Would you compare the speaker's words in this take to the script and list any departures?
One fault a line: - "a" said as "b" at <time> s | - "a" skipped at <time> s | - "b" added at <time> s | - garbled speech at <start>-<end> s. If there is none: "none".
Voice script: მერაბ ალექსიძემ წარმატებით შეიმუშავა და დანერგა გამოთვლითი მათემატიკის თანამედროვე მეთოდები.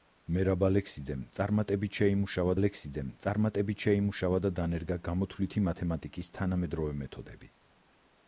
- "ალექსიძემ წარმატებით შეიმუშავა" added at 2.6 s